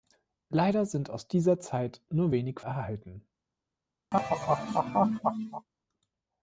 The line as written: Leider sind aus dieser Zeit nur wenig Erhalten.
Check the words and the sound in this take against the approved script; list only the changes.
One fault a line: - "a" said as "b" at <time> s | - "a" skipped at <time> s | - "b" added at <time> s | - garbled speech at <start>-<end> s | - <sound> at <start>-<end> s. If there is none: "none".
- laugh at 4.1-5.7 s